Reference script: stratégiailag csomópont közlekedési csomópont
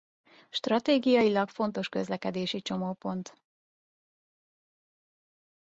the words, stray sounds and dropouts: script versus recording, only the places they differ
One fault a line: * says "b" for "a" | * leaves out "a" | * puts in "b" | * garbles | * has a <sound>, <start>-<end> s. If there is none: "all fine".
* says "fontos" for "csomópont"